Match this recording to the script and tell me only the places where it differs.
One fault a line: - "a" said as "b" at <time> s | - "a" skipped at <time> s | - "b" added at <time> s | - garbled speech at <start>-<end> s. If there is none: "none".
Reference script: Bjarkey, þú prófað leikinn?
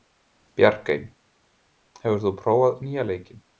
- "hefur" added at 2.0 s
- "nýja" added at 2.9 s